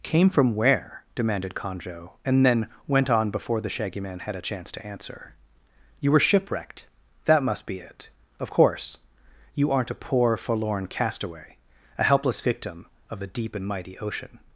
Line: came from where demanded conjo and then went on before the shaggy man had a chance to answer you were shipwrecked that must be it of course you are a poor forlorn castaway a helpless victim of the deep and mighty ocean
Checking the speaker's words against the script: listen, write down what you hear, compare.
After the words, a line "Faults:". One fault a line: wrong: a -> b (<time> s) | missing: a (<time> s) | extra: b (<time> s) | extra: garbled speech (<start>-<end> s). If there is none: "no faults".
came from where demanded conjo and then went on before the shaggy man had a chance to answer you were shipwrecked that must be it of course you aren't a poor forlorn castaway a helpless victim of the deep and mighty ocean
Faults:
wrong: are -> aren't (9.7 s)